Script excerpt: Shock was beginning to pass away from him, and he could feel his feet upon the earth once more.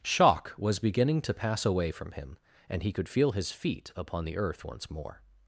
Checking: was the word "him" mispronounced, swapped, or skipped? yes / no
no